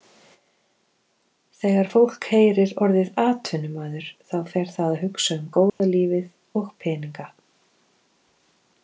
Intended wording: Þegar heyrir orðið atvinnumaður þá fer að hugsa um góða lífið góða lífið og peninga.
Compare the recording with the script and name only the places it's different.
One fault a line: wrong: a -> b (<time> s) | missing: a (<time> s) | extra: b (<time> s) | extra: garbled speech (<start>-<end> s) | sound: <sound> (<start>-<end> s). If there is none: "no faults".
extra: fólk (1.9 s)
extra: það (4.8 s)
sound: dropout (5.7-5.8 s)
missing: góða lífið (6.3 s)